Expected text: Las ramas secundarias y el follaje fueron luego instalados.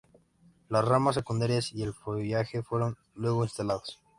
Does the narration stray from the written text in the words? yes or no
no